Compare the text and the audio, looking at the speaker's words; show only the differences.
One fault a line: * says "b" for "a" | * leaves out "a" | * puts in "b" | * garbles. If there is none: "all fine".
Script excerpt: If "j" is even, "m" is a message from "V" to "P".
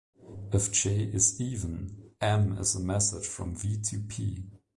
all fine